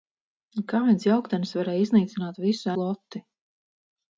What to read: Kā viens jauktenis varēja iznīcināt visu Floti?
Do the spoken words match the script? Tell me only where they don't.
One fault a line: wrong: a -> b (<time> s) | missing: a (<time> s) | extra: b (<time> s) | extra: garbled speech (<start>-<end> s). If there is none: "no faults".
no faults